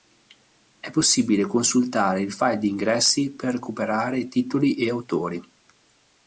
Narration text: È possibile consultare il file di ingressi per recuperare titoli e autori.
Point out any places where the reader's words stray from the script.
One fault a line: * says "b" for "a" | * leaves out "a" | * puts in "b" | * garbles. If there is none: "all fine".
all fine